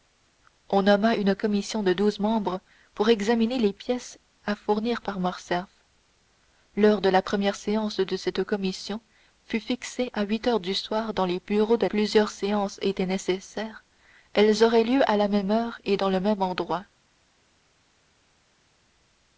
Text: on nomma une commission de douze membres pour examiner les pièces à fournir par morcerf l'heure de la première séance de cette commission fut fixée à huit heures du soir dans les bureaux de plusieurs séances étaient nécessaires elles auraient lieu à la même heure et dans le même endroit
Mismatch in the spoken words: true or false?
false